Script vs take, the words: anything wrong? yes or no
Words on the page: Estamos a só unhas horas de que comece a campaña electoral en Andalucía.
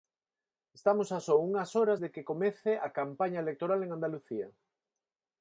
no